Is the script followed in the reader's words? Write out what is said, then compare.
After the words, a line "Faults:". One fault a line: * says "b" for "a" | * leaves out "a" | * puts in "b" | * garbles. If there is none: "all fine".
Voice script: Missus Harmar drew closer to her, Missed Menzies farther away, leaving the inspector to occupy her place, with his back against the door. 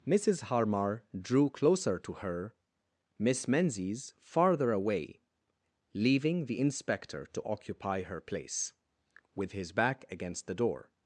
Missus Harmar drew closer to her, Miss Menzies farther away, leaving the inspector to occupy her place, with his back against the door.
Faults:
* says "Miss" for "Missed"